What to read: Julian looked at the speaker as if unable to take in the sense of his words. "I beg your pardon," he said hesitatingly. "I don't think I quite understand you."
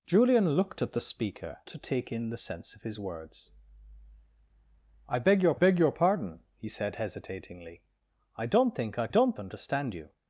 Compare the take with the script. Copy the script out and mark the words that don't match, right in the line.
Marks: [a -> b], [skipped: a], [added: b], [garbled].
Julian looked at the speaker [skipped: as if unable] to take in the sense of his words. "I beg your [added: beg your] pardon," he said hesitatingly. "I don't think I [quite -> don't] understand you."